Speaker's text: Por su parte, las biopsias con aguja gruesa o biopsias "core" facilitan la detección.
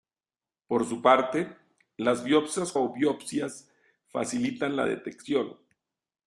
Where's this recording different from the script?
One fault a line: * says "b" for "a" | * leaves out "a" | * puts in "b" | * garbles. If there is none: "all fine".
* leaves out "con aguja gruesa"
* leaves out "core"